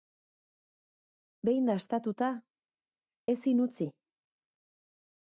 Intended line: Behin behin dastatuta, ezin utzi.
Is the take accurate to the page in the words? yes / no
no